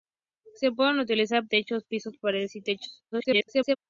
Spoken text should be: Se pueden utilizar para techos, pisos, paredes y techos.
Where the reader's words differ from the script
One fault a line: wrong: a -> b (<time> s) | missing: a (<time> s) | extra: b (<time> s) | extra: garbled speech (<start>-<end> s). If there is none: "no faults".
missing: para (1.4 s)
extra: garbled speech (3.1-3.8 s)